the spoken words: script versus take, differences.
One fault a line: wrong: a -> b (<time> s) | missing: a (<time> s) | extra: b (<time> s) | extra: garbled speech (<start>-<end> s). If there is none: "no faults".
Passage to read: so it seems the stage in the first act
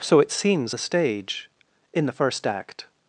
no faults